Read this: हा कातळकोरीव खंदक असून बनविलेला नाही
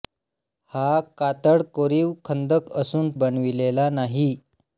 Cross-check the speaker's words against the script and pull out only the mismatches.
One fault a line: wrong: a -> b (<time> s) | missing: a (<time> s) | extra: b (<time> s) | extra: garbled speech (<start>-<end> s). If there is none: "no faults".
no faults